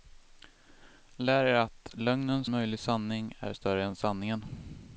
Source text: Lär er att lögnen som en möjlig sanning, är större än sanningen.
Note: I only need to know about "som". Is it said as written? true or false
false